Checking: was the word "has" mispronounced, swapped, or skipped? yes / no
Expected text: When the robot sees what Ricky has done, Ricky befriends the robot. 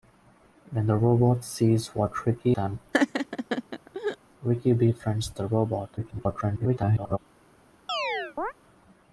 yes